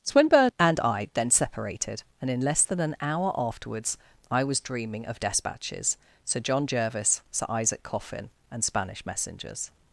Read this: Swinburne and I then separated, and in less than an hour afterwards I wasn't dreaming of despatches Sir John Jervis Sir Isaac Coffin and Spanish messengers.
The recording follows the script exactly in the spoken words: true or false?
false